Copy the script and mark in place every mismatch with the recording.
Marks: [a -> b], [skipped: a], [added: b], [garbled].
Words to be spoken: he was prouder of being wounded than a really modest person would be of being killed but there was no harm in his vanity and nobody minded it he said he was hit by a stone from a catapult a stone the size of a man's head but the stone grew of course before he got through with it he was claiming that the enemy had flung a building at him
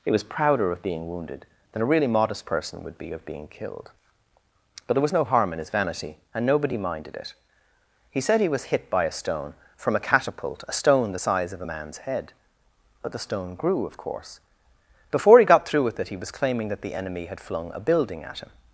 he was prouder of being wounded than a really modest person would be of being killed but there was no harm in his vanity and nobody minded it he said he was hit by a stone from a catapult a stone the size of a man's head but the stone grew of course before he got through with it he was claiming that the enemy had flung a building at him